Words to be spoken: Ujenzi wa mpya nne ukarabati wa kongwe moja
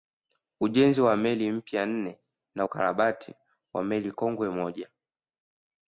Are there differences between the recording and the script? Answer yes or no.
yes